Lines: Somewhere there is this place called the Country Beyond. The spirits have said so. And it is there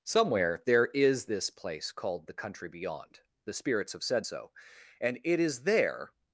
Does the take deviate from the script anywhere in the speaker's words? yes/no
no